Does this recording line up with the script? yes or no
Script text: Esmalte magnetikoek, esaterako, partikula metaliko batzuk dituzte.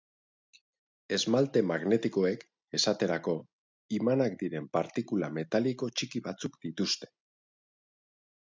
no